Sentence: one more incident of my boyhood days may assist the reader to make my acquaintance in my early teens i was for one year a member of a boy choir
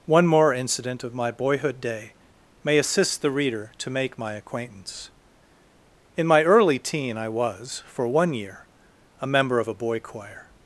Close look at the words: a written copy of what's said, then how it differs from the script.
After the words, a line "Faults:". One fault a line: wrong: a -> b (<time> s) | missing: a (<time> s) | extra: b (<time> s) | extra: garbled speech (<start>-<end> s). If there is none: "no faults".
one more incident of my boyhood day may assist the reader to make my acquaintance in my early teen i was for one year a member of a boy choir
Faults:
wrong: days -> day (1.8 s)
wrong: teens -> teen (6.8 s)